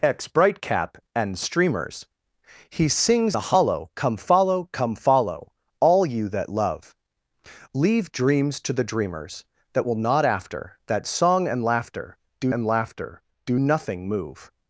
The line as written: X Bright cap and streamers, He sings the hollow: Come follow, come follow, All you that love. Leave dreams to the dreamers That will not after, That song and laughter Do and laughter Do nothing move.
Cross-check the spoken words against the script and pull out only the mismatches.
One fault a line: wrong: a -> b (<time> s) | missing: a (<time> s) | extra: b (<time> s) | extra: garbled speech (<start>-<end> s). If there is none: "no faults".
no faults